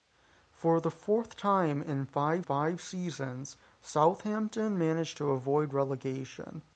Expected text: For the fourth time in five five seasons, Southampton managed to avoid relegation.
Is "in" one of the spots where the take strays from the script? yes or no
no